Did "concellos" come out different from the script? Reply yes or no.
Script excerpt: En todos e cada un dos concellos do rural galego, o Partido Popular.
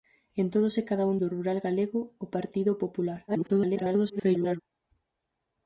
yes